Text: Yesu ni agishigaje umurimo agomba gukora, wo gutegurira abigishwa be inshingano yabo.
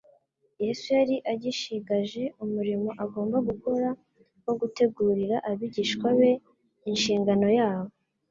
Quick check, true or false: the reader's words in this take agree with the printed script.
false